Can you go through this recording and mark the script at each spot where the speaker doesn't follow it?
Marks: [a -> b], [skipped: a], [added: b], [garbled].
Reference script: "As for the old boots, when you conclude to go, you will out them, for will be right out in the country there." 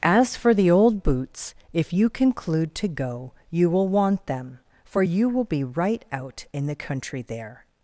"As for the old boots, [when -> if] you conclude to go, you will [out -> want] them, for [added: you] will be right out in the country there."